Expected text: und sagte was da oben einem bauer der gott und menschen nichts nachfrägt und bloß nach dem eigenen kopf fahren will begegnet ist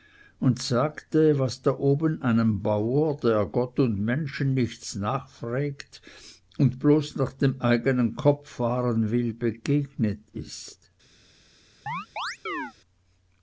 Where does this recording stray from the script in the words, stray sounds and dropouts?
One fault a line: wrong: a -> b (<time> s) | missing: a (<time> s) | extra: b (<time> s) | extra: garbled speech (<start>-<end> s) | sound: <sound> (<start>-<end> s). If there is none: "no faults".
sound: chirp (11.9-12.7 s)